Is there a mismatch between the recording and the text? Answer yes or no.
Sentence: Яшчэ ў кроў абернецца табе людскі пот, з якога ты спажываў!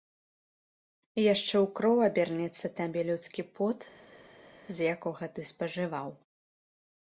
no